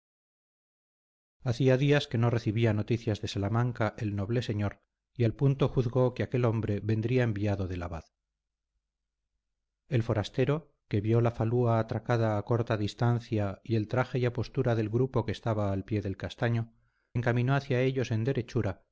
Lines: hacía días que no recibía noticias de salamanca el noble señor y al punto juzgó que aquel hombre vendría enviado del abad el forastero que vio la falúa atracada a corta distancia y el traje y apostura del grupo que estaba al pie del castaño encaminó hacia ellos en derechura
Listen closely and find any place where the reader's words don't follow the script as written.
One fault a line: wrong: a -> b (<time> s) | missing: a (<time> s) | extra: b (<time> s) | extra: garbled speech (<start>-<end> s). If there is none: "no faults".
no faults